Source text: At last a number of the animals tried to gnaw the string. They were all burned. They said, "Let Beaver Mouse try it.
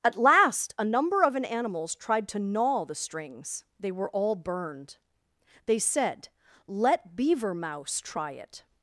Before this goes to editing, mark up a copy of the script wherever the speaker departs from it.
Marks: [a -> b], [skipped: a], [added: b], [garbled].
At last a number of [the -> an] animals tried to gnaw the [string. -> strings] They were all burned. They said, "Let Beaver Mouse try it.